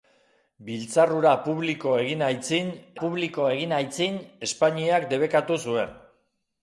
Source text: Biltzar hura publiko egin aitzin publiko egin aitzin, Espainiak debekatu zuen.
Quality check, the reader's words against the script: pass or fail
pass